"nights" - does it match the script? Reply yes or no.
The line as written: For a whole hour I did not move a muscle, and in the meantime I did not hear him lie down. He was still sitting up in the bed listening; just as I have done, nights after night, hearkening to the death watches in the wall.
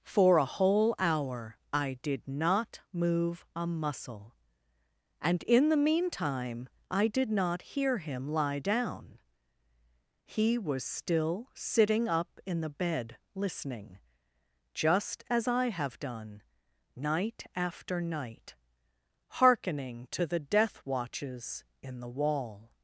no